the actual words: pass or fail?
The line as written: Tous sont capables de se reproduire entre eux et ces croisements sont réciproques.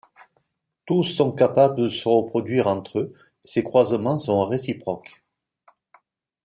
pass